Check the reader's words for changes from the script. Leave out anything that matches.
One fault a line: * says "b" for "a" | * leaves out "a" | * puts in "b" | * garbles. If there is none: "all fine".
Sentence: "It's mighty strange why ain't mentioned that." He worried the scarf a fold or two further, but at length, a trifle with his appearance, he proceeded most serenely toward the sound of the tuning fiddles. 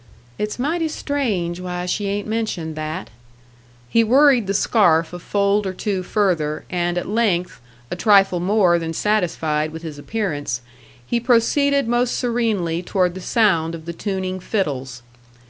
* puts in "she"
* says "and" for "but"
* puts in "more than satisfied"